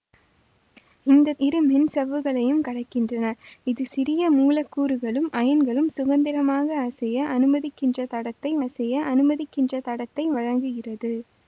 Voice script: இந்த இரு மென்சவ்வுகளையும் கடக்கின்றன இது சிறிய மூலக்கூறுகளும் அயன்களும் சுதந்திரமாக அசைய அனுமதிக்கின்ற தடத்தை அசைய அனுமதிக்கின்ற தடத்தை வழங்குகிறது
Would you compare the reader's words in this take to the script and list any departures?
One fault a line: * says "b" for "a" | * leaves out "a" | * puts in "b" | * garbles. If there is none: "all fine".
all fine